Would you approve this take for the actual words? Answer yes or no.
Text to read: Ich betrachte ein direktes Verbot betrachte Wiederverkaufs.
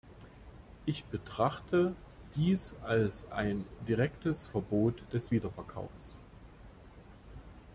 no